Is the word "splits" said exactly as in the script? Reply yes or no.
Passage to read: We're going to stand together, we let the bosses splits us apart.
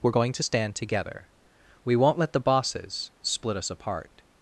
no